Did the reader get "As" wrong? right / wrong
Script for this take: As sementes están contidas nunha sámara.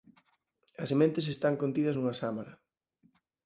right